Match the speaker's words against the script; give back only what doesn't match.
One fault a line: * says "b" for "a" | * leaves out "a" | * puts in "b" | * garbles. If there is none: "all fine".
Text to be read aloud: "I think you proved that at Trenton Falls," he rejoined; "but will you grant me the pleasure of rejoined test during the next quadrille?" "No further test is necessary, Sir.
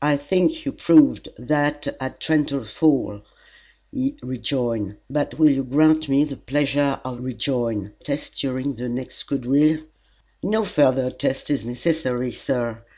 all fine